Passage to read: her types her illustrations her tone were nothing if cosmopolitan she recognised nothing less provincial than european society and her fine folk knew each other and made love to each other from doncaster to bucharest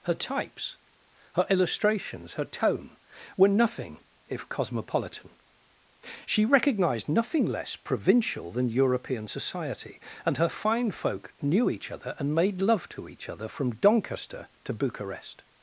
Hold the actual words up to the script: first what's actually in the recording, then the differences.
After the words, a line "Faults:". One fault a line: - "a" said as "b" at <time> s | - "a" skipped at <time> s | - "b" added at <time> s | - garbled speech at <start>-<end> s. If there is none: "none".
her types her illustrations her tone were nothing if cosmopolitan she recognised nothing less provincial than european society and her fine folk knew each other and made love to each other from doncaster to bucharest
Faults:
none